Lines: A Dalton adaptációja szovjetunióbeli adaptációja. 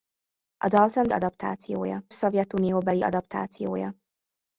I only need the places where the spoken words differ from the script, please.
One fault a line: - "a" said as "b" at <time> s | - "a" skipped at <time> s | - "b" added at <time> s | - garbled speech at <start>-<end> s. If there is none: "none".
none